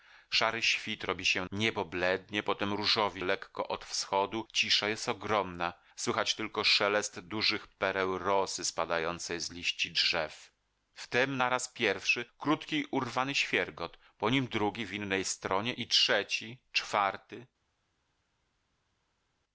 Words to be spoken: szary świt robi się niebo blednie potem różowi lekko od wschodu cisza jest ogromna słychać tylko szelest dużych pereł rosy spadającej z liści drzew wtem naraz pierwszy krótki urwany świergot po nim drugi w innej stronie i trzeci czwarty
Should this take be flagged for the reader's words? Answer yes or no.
no